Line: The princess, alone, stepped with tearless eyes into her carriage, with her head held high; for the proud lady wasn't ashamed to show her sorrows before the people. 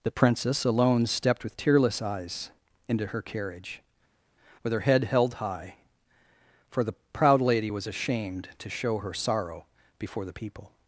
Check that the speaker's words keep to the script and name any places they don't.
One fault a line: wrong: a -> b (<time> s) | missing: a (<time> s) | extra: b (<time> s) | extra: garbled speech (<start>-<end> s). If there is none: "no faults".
wrong: wasn't -> was (7.7 s)
wrong: sorrows -> sorrow (9.1 s)